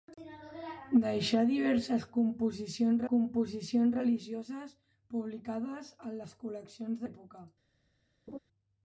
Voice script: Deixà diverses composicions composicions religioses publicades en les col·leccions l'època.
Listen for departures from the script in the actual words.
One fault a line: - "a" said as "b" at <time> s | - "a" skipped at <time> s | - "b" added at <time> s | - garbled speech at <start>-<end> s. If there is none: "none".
none